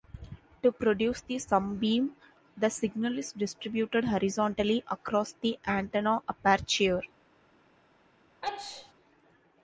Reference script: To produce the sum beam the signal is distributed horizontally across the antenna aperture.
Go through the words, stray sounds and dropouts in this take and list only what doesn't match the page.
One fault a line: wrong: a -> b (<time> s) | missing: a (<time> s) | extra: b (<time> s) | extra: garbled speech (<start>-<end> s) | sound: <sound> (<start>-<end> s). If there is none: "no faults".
sound: sneeze (8.4-8.9 s)